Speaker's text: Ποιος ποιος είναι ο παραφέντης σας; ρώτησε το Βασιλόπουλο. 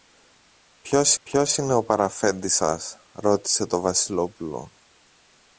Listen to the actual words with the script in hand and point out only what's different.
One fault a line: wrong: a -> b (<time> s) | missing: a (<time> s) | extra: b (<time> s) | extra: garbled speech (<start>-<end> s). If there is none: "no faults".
no faults